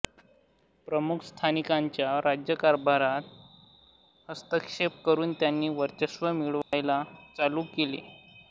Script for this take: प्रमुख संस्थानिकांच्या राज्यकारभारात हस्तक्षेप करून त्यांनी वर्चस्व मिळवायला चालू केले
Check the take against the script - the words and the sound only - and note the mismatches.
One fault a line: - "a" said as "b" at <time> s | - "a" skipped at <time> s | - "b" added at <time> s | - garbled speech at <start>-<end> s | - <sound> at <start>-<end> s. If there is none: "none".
- dropout at 6.6-6.7 s